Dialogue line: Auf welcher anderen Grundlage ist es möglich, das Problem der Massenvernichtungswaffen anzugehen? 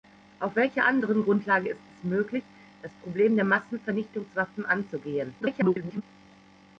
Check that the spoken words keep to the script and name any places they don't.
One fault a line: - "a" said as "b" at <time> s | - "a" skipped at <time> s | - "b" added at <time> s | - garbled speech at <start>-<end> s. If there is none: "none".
- garbled speech at 5.4-6.0 s